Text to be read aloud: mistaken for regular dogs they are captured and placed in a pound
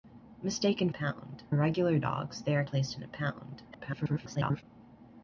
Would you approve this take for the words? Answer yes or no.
no